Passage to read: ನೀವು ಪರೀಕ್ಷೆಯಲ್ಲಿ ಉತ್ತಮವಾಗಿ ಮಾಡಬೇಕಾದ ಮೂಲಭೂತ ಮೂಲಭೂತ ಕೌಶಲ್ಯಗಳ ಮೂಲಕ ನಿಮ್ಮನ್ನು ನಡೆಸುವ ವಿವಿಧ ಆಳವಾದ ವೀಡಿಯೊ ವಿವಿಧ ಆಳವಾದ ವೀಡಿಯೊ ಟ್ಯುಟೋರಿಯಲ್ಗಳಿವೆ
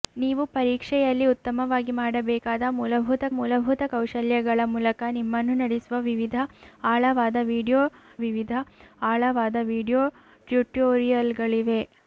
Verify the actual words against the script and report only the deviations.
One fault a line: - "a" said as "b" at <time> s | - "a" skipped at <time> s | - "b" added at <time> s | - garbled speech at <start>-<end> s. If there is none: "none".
none